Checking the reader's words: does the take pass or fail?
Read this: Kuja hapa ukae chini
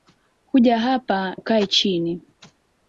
pass